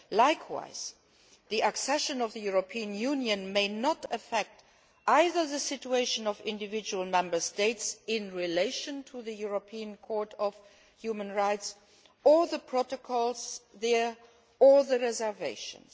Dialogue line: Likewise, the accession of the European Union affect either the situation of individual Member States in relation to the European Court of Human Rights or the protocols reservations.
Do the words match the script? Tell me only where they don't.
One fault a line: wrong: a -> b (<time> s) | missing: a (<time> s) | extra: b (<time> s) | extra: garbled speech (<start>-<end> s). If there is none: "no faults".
extra: may not (3.5 s)
extra: there or the (13.7 s)